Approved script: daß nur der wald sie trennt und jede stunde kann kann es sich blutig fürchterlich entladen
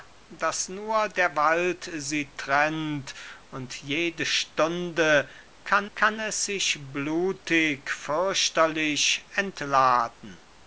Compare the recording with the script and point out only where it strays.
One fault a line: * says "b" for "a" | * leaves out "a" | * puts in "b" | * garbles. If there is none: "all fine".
all fine